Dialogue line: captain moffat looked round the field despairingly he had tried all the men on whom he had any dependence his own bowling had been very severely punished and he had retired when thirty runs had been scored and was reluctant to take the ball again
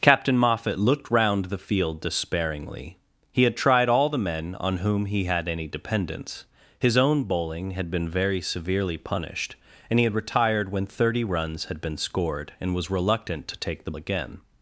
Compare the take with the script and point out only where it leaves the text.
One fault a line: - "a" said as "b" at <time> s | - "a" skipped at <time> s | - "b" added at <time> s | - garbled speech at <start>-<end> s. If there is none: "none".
- "ball" skipped at 13.9 s